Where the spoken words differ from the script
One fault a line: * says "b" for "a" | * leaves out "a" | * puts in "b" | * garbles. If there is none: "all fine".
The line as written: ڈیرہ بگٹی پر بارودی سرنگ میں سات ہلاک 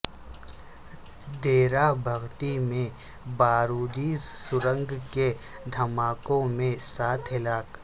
* says "میں" for "پر"
* puts in "کے دھماکوں"